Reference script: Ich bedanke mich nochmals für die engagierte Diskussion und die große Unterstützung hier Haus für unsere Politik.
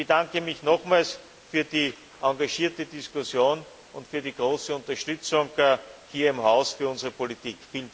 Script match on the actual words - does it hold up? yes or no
no